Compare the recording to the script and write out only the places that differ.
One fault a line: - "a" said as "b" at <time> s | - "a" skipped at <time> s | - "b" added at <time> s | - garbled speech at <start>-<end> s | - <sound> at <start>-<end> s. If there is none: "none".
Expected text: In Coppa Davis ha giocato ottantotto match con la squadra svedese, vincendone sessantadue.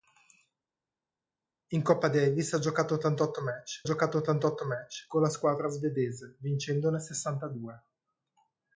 - "giocato ottantotto match" added at 3.8 s